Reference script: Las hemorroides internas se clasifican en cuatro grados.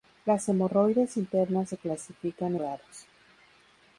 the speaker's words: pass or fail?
fail